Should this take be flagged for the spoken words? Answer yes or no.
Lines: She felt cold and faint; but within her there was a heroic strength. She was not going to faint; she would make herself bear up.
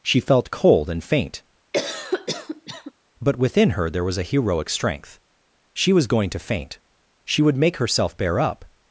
yes